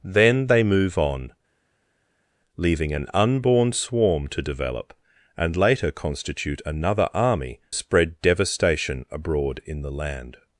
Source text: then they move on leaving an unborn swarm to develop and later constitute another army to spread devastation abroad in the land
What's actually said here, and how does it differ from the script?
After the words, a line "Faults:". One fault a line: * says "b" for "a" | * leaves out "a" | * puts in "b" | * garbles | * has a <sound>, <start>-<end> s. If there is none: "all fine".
then they move on leaving an unborn swarm to develop and later constitute another army spread devastation abroad in the land
Faults:
* leaves out "to"